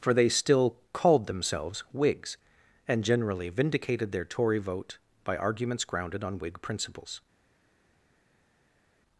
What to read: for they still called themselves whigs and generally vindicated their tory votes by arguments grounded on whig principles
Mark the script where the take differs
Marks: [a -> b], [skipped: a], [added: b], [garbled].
for they still called themselves whigs and generally vindicated their tory [votes -> vote] by arguments grounded on whig principles